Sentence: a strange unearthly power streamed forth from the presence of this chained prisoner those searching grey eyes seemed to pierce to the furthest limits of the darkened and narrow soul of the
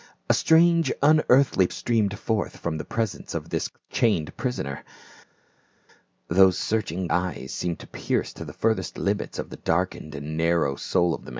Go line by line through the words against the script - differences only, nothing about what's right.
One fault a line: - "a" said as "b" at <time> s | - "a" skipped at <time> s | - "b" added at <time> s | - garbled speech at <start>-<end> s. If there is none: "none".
- "power" skipped at 1.7 s
- "grey" skipped at 7.1 s